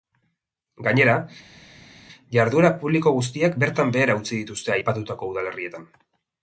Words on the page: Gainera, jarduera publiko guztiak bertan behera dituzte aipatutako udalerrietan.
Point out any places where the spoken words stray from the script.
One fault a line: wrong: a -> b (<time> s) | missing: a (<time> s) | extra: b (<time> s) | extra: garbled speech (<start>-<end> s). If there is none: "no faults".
extra: utzi (4.2 s)